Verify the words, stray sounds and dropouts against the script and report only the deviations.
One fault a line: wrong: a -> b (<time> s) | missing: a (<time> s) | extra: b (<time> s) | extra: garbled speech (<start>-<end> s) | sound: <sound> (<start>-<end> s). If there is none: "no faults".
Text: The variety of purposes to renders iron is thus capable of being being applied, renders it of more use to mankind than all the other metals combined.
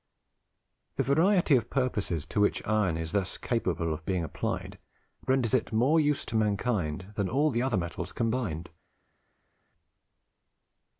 wrong: renders -> which (2.4 s)
missing: being (4.2 s)